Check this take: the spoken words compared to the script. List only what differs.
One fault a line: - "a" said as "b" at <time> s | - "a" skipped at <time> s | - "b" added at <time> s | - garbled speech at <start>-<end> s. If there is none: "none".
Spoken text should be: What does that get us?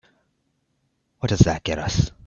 none